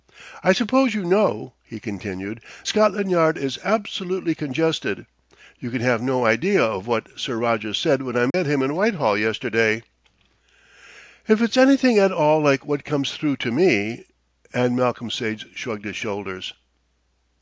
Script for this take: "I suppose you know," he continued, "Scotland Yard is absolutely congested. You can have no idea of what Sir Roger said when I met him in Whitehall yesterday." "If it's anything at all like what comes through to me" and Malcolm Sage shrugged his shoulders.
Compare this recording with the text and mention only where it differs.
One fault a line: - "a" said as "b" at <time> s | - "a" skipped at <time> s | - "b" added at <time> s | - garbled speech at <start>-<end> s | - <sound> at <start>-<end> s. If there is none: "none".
- dropout at 8.3-8.3 s